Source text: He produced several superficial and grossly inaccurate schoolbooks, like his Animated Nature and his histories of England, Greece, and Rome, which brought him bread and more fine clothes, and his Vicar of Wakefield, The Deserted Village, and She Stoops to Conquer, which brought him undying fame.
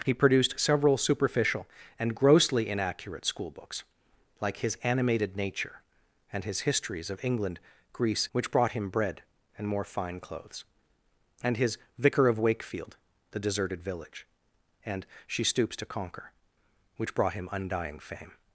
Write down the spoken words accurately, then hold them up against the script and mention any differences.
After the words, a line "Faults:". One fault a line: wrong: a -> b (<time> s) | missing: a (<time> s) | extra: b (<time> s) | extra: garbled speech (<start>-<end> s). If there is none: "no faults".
He produced several superficial and grossly inaccurate schoolbooks, like his Animated Nature and his histories of England, Greece, which brought him bread and more fine clothes, and his Vicar of Wakefield, The Deserted Village, and She Stoops to Conquer, which brought him undying fame.
Faults:
missing: and Rome (8.3 s)